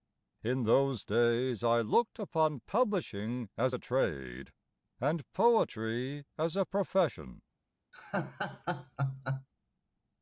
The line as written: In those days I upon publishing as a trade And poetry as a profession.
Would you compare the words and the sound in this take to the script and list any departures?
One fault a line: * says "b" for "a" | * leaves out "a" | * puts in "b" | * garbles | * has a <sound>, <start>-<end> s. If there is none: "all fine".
* puts in "looked"
* has a laugh, 7.9-9.5 s